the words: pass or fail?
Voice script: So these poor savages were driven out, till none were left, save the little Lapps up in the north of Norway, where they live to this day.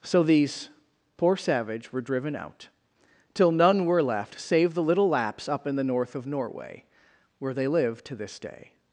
fail